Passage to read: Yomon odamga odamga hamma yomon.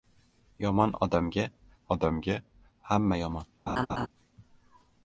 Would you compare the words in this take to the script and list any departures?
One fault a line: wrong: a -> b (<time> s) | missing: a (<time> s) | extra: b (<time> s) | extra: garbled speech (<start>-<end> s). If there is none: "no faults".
no faults